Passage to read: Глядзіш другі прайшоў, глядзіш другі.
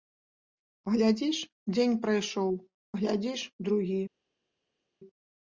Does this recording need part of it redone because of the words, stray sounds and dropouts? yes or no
yes